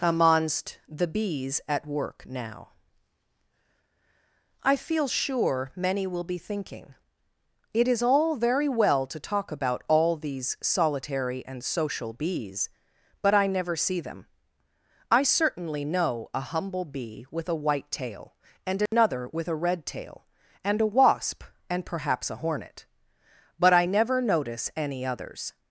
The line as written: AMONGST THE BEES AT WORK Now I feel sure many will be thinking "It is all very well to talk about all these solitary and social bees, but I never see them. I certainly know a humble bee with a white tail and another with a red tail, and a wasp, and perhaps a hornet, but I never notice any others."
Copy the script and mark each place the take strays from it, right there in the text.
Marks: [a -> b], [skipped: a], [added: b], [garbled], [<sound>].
AMONGST THE BEES AT WORK Now I feel sure many will be thinking "It is all very well to talk about all these solitary and social bees, but I never see them. I certainly know a humble bee with a white tail and another [dropout] with a red tail, and a wasp, and perhaps a hornet, but I never notice any others."